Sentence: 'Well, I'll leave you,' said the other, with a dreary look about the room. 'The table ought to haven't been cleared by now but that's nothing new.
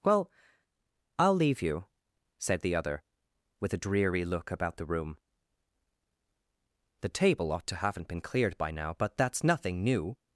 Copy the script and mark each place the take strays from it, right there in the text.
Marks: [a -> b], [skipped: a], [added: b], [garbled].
'Well, I'll leave you,' said the other, with a dreary look about the room. 'The table ought to haven't been cleared by now but that's nothing new.